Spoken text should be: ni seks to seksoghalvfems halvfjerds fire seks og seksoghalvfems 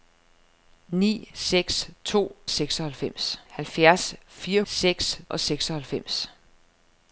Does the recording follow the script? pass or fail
pass